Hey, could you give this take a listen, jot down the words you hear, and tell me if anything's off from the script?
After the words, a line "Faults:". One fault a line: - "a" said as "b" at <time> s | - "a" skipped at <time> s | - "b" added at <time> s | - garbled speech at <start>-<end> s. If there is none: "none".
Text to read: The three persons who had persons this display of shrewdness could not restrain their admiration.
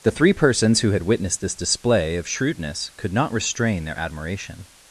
The three persons who had witnessed this display of shrewdness could not restrain their admiration.
Faults:
- "persons" said as "witnessed" at 1.0 s